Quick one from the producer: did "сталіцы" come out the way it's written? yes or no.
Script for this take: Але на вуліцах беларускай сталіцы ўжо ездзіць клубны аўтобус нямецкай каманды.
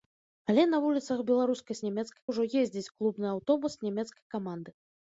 no